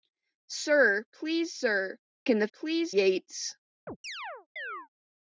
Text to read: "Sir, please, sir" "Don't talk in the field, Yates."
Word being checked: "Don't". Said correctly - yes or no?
no